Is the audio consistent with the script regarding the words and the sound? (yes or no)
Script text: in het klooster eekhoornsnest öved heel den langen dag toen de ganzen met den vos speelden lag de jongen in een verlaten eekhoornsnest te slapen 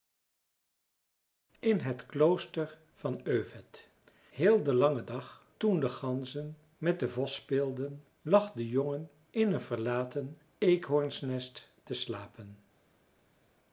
no